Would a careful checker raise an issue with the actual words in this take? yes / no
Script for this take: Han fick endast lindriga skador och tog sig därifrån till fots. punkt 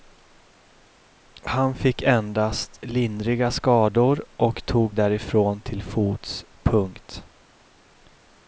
yes